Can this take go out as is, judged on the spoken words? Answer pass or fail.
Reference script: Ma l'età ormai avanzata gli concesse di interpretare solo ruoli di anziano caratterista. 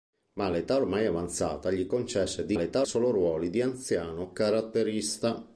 fail